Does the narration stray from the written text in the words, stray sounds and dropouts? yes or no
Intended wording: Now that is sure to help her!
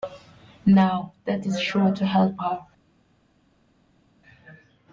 no